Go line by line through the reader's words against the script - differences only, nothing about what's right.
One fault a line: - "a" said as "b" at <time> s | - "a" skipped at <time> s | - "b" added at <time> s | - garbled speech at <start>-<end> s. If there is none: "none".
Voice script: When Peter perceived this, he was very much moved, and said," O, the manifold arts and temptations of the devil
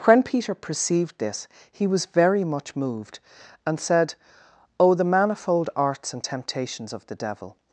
none